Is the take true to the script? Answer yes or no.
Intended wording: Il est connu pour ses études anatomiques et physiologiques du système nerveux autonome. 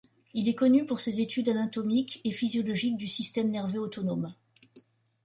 yes